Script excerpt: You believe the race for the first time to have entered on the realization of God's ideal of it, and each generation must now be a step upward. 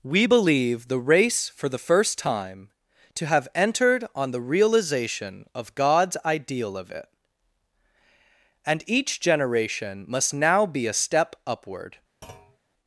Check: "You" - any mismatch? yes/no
yes